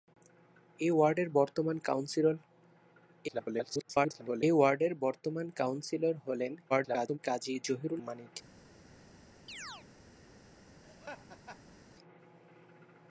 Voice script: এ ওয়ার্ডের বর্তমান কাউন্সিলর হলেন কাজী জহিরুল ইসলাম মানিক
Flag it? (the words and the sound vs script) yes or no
yes